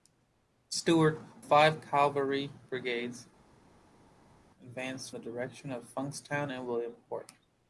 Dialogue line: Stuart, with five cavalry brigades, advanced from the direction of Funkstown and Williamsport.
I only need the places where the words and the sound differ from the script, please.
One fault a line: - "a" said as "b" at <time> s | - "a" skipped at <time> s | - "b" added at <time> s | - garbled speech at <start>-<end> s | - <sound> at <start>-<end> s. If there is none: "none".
- "with" skipped at 1.2 s
- "from" skipped at 5.1 s